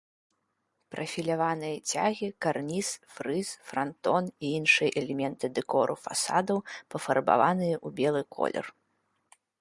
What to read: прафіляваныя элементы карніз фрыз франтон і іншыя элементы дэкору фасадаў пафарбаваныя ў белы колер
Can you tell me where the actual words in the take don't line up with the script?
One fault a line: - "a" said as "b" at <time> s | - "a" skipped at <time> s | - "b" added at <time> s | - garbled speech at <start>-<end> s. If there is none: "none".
- "элементы" said as "цягі" at 1.9 s